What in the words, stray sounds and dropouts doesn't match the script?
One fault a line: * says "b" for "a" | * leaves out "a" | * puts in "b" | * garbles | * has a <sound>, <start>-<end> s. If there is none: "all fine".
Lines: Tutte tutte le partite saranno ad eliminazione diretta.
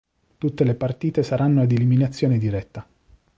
* leaves out "tutte"